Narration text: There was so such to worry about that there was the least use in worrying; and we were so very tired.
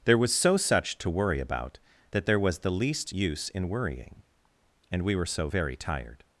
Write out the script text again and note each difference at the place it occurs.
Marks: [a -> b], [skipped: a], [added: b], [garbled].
There was so such to worry about that there was the least use in worrying; and we were so very tired.